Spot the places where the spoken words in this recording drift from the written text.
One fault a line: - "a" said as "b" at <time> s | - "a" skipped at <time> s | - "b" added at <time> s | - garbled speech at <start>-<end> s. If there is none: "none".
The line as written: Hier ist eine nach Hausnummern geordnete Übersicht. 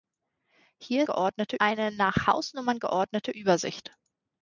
- "ist" said as "geordnete" at 1.0 s